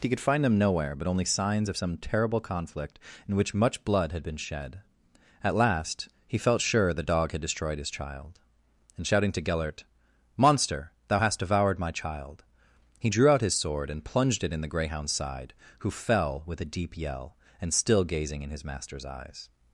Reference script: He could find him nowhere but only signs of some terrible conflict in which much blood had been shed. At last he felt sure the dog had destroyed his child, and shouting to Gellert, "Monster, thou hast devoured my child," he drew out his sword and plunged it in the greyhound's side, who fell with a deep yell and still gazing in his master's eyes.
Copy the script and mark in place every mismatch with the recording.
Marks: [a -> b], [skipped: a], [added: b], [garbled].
He could find [him -> them] nowhere but only signs of some terrible conflict in which much blood had been shed. At last he felt sure the dog had destroyed his child, and shouting to Gellert, "Monster, thou hast devoured my child," he drew out his sword and plunged it in the greyhound's side, who fell with a deep yell and still gazing in his master's eyes.